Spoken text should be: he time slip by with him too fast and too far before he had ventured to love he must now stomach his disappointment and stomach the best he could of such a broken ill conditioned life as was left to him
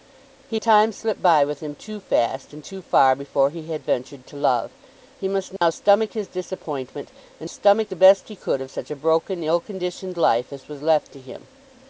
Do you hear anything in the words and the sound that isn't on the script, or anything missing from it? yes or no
yes